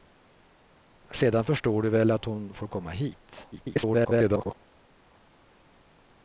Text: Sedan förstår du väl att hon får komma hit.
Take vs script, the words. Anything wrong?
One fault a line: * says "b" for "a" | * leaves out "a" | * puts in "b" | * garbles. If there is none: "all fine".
* garbles